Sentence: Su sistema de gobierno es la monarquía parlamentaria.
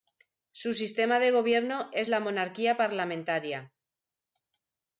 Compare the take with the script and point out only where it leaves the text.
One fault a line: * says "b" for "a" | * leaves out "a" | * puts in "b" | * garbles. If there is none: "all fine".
all fine